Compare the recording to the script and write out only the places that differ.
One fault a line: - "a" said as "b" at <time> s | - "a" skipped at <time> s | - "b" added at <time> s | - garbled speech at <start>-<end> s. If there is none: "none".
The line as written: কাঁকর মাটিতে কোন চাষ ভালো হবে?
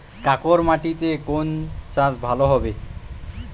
none